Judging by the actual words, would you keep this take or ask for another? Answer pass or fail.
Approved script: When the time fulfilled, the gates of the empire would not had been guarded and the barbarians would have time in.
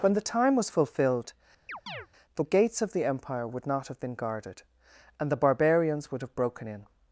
fail